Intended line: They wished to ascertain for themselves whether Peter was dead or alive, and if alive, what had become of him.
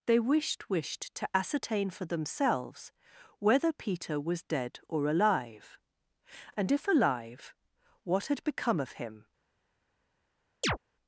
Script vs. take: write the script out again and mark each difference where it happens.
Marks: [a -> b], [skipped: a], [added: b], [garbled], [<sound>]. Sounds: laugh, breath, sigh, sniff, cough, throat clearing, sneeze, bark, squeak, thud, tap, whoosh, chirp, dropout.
They wished [added: wished] to ascertain for themselves whether Peter was dead or alive, and if alive, what had become of him. [chirp]